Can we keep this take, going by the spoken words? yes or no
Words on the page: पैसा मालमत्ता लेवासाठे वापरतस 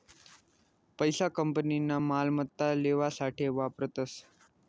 no